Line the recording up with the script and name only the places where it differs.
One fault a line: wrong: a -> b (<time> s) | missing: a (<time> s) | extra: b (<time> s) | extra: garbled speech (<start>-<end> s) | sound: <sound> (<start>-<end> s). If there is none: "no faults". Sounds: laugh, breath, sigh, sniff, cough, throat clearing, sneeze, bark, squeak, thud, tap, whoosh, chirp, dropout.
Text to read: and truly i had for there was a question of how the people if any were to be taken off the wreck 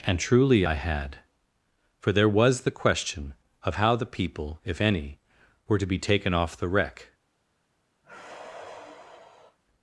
wrong: a -> the (2.6 s)
sound: sigh (8.0-9.6 s)